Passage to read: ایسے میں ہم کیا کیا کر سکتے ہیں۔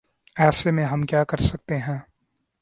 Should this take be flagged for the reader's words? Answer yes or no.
yes